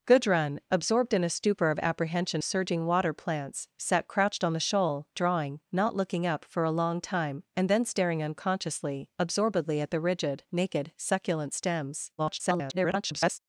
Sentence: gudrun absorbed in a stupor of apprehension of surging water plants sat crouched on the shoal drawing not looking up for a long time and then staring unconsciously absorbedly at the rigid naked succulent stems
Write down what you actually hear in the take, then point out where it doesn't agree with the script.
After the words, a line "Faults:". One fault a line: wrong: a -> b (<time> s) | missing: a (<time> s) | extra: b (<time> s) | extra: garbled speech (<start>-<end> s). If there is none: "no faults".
gudrun absorbed in a stupor of apprehension surging water plants sat crouched on the shoal drawing not looking up for a long time and then staring unconsciously absorbedly at the rigid naked succulent stems [garbled]
Faults:
missing: of (2.4 s)
extra: garbled speech (12.2-13.4 s)